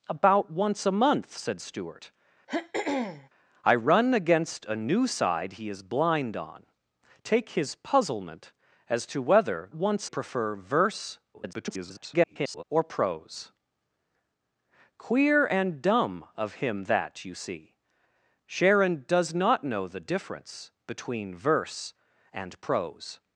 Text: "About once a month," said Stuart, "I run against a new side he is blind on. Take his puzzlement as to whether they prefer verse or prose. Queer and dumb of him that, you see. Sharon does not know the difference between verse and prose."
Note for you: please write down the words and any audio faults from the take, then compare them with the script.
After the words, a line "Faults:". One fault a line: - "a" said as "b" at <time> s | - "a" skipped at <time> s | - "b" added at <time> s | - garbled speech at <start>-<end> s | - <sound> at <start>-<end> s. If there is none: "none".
"About once a month," said Stuart, "I run against a new side he is blind on. Take his puzzlement as to whether once prefer verse [garbled] or prose. Queer and dumb of him that, you see. Sharon does not know the difference between verse and prose."
Faults:
- throat clearing at 2.5-3.3 s
- "they" said as "once" at 9.7 s
- garbled speech at 11.3-12.6 s